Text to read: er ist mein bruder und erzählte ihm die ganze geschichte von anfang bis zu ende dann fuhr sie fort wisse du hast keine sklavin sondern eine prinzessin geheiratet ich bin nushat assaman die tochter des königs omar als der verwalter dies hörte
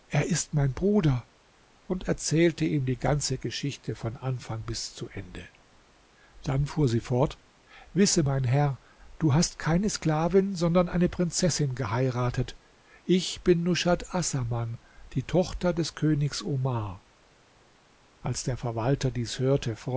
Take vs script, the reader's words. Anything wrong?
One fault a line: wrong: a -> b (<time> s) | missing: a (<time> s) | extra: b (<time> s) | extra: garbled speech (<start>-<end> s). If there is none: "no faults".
extra: mein herr (8.2 s)